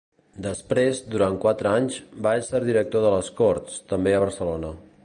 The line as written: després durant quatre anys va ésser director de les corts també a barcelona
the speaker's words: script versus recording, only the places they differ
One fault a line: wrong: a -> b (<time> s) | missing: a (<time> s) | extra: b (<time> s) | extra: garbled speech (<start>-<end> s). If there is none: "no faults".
no faults